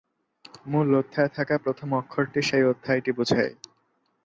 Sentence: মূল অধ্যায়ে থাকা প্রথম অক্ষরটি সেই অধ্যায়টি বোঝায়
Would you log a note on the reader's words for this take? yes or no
no